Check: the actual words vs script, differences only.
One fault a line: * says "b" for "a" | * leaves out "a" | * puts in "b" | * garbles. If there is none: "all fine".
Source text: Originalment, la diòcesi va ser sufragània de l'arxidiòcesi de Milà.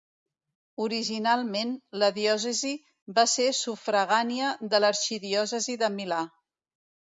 all fine